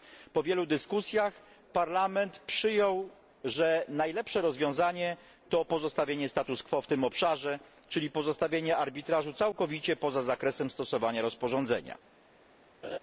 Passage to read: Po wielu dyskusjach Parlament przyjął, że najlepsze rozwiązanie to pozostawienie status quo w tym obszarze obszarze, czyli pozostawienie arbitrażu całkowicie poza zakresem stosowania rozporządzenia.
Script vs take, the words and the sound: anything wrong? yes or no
yes